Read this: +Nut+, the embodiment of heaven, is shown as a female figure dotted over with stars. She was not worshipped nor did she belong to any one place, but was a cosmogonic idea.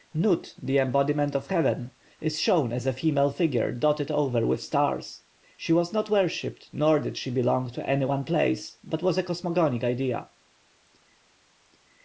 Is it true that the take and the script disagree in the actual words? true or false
false